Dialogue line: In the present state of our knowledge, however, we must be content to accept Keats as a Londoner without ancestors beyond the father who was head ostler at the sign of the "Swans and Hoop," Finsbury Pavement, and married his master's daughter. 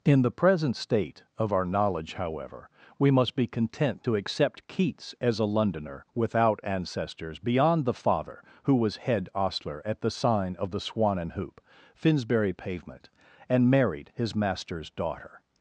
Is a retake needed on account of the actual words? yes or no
yes